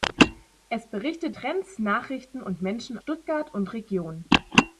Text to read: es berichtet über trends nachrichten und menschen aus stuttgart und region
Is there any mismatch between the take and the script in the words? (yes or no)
yes